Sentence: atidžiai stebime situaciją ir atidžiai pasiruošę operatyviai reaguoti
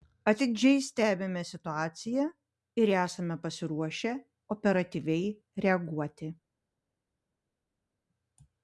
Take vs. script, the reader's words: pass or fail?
fail